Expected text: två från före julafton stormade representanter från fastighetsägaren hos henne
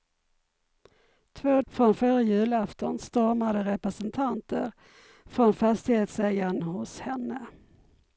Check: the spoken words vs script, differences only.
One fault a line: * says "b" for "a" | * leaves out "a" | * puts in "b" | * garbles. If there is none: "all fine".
all fine